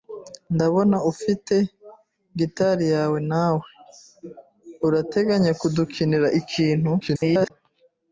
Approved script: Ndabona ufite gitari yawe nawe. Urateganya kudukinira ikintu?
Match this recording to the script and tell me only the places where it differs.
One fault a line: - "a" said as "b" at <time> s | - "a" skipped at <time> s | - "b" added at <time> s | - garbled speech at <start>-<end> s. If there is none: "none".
- garbled speech at 7.0-7.5 s